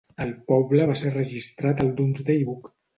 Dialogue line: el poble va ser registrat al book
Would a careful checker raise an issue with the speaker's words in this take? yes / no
yes